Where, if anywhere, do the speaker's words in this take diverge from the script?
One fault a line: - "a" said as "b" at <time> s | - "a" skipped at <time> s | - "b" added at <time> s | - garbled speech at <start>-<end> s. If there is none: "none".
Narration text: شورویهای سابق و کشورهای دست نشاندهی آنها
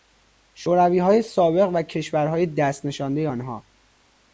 none